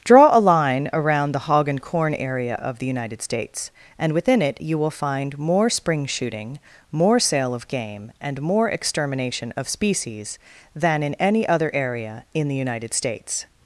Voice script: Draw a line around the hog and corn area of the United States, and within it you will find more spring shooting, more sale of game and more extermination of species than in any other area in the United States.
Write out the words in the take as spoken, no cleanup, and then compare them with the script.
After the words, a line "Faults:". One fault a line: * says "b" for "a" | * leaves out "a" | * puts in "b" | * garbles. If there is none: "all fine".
Draw a line around the hog and corn area of the United States, and within it you will find more spring shooting, more sale of game and more extermination of species than in any other area in the United States.
Faults:
all fine